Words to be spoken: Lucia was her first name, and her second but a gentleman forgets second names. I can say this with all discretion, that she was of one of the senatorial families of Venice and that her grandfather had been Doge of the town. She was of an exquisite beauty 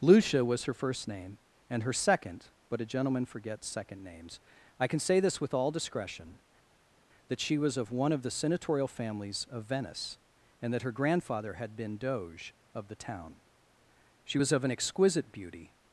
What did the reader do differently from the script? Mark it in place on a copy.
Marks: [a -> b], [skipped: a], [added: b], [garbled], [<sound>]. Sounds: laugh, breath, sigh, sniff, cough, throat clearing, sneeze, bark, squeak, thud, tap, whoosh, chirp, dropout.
Lucia was her first name, and her second but a gentleman forgets second names. I can say this with all discretion, that she was of one of the senatorial families of Venice and that her grandfather had been Doge of the town. She was of an exquisite beauty